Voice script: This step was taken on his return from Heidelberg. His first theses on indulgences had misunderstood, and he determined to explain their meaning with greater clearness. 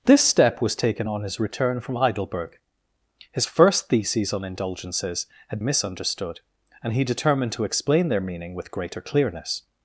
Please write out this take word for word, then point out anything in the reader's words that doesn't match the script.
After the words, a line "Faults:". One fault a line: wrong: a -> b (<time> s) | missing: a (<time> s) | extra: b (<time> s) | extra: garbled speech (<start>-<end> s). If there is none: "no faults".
This step was taken on his return from Heidelberg. His first theses on indulgences had misunderstood, and he determined to explain their meaning with greater clearness.
Faults:
no faults